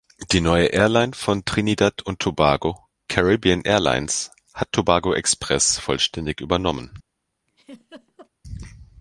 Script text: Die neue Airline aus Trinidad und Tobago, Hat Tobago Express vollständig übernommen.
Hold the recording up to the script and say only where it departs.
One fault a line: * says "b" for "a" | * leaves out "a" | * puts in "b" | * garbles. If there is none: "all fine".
* says "von" for "aus"
* puts in "Caribbean Airlines"